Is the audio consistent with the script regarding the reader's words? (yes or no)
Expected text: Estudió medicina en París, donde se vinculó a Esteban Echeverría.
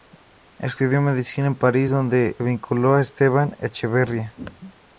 no